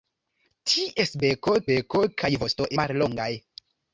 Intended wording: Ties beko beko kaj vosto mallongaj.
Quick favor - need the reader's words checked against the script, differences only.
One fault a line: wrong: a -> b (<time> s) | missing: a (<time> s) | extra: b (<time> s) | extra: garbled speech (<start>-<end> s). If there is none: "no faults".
no faults